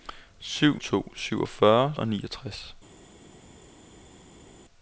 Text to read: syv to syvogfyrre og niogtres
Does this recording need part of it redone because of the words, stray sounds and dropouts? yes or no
no